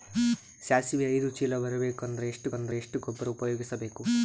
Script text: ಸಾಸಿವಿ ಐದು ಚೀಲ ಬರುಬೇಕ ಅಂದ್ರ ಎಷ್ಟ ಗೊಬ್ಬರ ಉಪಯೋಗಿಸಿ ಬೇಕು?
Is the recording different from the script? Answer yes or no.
yes